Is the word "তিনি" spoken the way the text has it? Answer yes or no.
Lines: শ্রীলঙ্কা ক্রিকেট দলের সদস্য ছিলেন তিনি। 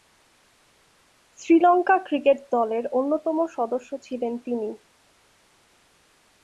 yes